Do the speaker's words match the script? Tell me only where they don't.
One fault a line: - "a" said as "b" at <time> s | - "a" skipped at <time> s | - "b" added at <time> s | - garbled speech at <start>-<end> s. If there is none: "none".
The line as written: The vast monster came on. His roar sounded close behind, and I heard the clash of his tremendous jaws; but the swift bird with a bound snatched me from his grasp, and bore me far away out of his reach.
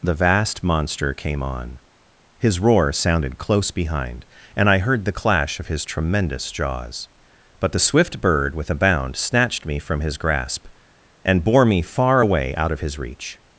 none